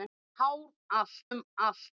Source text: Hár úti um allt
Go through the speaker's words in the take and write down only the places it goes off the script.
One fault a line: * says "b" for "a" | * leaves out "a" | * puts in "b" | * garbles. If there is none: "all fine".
* says "allt" for "úti"